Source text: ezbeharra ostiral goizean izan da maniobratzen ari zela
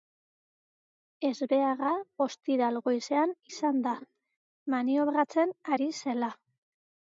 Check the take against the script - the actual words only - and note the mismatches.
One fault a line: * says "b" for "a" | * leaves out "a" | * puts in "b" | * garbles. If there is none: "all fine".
all fine